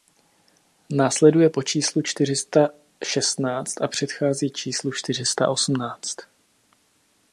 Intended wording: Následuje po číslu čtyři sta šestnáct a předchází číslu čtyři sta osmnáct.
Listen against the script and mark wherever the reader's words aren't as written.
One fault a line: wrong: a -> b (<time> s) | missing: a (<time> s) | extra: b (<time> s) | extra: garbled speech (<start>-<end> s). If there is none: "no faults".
no faults